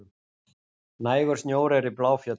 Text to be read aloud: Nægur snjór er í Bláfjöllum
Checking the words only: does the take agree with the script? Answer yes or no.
yes